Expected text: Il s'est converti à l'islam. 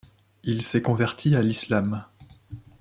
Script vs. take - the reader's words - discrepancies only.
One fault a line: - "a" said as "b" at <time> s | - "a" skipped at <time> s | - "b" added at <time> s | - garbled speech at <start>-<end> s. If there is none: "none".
none